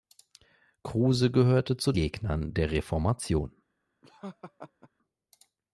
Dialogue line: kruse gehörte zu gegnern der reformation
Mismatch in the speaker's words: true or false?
false